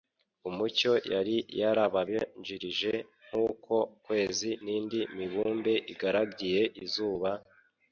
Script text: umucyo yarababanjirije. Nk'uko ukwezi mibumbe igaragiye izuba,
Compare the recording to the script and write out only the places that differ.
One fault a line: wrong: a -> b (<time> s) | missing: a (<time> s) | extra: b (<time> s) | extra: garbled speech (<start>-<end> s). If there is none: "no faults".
extra: yari (1.1 s)
extra: n'indi (4.6 s)